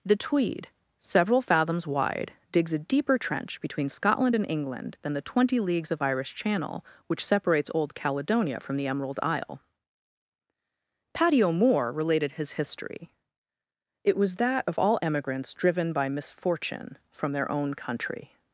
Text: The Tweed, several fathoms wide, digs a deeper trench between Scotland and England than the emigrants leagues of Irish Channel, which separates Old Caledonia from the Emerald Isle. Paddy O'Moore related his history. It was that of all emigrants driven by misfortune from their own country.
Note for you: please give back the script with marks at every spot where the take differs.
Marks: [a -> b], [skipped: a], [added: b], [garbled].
The Tweed, several fathoms wide, digs a deeper trench between Scotland and England than the [emigrants -> twenty] leagues of Irish Channel, which separates Old Caledonia from the Emerald Isle. Paddy O'Moore related his history. It was that of all emigrants driven by misfortune from their own country.